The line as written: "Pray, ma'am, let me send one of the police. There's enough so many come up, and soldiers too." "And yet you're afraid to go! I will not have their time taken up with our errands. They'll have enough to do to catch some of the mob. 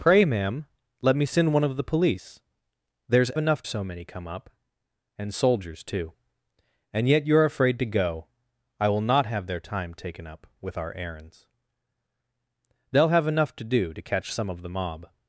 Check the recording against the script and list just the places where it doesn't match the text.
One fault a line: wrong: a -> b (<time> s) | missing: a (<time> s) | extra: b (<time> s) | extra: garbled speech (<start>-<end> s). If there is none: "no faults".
no faults